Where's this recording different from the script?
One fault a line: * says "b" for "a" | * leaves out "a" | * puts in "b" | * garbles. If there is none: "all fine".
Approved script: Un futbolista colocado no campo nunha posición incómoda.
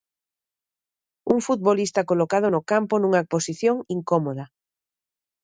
all fine